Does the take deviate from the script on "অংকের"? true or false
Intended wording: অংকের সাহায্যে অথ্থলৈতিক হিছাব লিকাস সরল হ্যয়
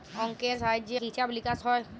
false